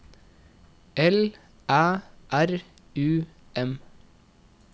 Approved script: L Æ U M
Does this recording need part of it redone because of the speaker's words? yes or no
yes